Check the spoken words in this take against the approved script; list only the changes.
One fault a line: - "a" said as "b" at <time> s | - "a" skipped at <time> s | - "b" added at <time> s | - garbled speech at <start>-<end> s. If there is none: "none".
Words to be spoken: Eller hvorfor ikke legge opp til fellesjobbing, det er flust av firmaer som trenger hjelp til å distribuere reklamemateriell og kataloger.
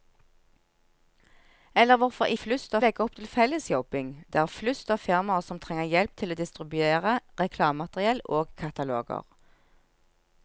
- "ikke" said as "flust" at 2.4 s